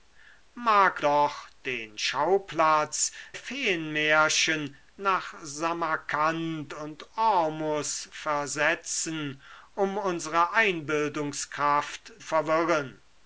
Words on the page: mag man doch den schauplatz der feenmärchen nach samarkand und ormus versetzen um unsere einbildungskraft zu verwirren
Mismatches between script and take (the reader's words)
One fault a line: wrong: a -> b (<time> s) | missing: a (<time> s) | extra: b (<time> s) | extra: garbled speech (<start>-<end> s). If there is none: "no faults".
missing: man (1.0 s)
missing: der (3.1 s)
missing: zu (12.1 s)